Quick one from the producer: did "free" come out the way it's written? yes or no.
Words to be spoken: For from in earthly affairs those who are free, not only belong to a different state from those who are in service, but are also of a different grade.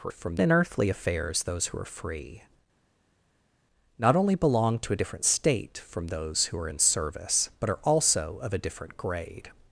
yes